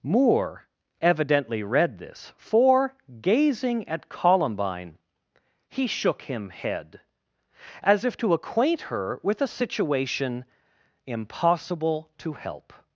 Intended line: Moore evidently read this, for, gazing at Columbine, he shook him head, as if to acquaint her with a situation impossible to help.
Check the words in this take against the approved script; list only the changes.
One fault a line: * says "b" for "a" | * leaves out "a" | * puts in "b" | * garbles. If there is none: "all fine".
all fine